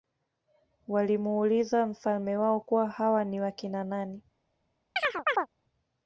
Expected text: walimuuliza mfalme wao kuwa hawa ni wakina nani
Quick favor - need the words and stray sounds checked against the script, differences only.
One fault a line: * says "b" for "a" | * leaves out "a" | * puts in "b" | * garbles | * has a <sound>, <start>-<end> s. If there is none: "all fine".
* has a chirp, 5.0-5.5 s